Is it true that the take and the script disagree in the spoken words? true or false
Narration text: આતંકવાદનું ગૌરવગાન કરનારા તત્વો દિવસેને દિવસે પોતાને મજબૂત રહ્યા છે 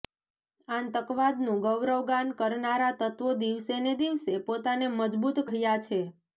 false